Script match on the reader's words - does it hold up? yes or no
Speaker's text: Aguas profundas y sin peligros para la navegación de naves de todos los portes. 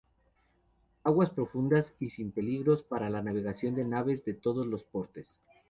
yes